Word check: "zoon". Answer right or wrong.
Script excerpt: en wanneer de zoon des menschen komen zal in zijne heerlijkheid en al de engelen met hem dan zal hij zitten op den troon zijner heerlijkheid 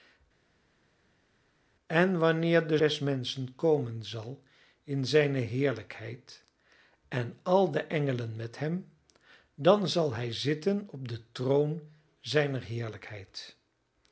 wrong